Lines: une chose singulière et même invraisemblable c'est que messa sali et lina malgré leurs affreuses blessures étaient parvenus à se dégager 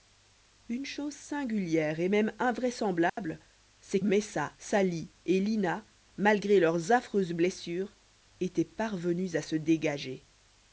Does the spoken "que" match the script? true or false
false